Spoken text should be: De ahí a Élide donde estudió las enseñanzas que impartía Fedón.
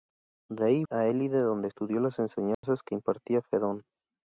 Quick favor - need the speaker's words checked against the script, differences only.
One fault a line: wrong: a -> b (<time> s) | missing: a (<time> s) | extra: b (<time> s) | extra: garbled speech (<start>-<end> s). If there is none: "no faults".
no faults